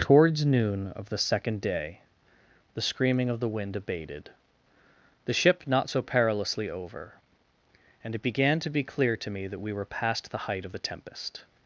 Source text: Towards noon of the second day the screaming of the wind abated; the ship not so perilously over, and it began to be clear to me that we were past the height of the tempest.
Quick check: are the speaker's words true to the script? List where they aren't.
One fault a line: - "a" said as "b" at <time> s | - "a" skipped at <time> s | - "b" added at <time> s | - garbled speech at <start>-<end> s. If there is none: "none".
none